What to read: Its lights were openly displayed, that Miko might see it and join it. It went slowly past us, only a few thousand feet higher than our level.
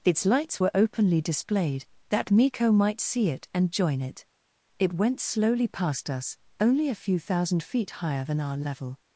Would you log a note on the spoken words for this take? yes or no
no